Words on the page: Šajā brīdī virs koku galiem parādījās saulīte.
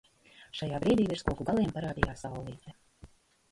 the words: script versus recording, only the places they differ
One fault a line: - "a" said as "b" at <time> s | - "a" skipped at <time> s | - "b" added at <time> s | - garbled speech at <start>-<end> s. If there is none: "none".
none